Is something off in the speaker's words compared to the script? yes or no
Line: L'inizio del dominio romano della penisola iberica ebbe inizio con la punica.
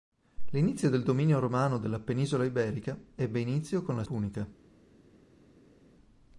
no